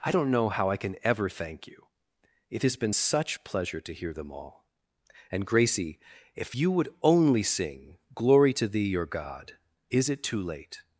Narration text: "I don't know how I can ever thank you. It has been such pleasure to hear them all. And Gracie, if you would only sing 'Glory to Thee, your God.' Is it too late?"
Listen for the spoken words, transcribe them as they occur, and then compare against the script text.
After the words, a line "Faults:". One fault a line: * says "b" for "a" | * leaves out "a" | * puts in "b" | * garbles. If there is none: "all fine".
"I don't know how I can ever thank you. It has been such pleasure to hear them all. And Gracie, if you would only sing 'Glory to Thee, your God.' Is it too late?"
Faults:
all fine